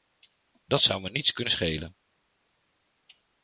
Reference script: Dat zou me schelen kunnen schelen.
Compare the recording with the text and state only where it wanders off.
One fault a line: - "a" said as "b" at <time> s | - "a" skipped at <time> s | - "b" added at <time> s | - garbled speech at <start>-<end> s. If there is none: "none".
- "schelen" said as "niets" at 1.1 s